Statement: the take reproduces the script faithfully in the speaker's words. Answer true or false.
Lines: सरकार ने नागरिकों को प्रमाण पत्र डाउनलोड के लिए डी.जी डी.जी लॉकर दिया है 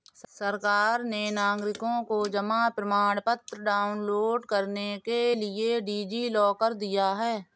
false